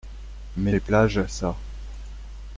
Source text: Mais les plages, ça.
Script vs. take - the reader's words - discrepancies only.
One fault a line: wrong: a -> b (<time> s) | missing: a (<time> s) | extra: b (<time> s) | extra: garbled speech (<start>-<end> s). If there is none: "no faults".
no faults